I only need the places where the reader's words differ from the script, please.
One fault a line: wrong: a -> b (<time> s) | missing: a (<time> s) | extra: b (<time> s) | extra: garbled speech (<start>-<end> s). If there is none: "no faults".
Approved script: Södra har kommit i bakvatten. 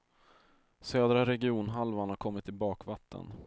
extra: regionhalvan (1.2 s)